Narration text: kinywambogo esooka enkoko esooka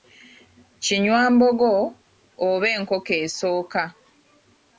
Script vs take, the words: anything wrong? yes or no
yes